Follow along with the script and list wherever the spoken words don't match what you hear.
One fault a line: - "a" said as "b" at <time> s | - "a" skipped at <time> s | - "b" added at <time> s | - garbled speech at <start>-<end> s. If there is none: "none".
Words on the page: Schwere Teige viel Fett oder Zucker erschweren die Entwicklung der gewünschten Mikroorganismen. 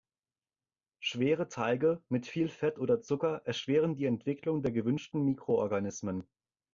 - "mit" added at 2.1 s